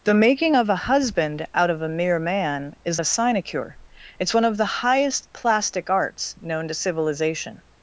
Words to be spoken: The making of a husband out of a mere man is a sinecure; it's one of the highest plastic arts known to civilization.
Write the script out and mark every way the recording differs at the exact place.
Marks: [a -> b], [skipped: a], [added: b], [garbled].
The making of a husband out of a mere man is a sinecure; it's one of the highest plastic arts known to civilization.